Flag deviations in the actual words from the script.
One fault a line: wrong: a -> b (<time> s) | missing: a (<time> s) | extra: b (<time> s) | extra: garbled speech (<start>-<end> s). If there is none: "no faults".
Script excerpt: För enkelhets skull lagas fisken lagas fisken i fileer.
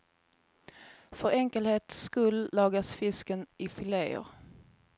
missing: lagas fisken (3.5 s)